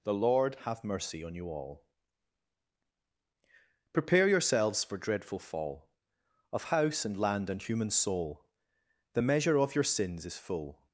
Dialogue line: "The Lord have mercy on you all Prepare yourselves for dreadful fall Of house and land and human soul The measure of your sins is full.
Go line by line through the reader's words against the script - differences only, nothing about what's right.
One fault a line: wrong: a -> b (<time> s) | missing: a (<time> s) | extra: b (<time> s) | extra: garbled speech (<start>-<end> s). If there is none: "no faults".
no faults